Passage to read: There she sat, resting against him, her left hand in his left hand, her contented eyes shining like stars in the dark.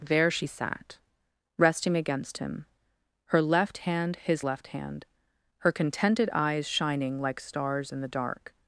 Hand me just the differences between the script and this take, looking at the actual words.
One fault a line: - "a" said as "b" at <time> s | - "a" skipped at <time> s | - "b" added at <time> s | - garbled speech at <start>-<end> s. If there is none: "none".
- "in" skipped at 4.2 s